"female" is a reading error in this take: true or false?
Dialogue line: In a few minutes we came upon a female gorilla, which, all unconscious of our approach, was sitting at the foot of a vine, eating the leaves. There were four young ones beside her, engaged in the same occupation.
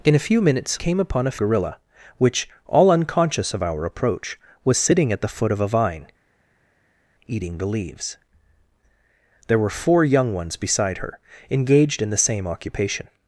true